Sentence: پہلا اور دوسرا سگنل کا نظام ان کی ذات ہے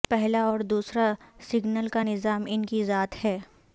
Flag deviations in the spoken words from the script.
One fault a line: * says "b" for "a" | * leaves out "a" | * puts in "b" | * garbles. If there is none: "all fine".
all fine